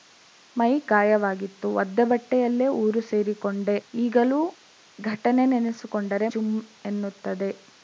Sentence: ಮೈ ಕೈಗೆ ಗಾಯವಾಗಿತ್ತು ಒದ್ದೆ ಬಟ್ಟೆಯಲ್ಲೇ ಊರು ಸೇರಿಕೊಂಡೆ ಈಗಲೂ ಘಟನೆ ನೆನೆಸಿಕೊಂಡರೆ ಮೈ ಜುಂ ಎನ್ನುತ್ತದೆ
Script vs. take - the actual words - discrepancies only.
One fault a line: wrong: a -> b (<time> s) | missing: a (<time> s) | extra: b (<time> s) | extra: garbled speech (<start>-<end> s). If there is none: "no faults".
missing: ಕೈಗೆ (0.7 s)
missing: ಮೈ (6.3 s)